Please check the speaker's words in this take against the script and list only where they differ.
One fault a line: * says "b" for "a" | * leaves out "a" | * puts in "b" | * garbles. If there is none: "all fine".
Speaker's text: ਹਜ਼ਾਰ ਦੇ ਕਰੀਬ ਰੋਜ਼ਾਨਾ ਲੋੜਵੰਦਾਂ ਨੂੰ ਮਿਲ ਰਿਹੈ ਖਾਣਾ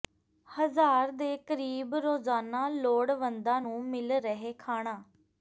all fine